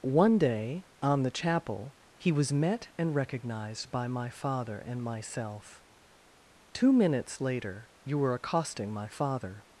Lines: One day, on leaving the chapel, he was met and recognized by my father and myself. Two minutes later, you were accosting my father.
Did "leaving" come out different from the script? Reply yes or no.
yes